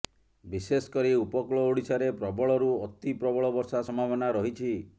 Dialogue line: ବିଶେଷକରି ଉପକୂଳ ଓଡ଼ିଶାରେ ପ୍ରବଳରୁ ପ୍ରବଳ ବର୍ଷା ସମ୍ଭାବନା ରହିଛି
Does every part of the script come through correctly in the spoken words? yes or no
no